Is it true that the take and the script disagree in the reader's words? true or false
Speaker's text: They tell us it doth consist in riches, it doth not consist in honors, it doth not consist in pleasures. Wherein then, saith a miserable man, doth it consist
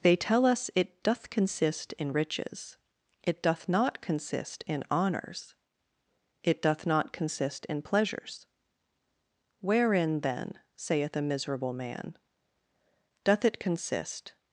false